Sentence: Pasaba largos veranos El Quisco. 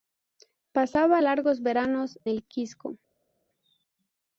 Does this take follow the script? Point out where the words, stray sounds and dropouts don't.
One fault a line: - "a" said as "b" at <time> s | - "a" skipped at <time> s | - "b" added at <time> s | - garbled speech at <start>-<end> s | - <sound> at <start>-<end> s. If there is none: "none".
none